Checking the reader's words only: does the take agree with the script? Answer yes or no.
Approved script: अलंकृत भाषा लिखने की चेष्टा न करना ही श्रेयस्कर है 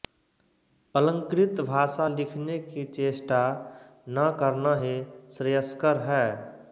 yes